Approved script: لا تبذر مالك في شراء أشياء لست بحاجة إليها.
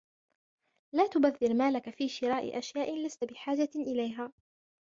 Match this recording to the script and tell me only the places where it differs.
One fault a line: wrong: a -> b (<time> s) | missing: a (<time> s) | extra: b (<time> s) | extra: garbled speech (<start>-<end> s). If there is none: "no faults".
no faults